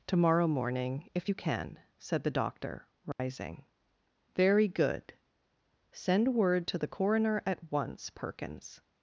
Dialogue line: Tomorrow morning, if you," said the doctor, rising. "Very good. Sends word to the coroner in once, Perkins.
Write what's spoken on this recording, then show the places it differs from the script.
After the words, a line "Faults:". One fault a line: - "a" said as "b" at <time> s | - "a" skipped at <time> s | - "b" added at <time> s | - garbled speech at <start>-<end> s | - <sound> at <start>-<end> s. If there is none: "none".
Tomorrow morning, if you can," said the doctor, rising. "Very good. Send word to the coroner at once, Perkins.
Faults:
- "can" added at 1.3 s
- dropout at 3.1-3.2 s
- "Sends" said as "Send" at 5.9 s
- "in" said as "at" at 7.4 s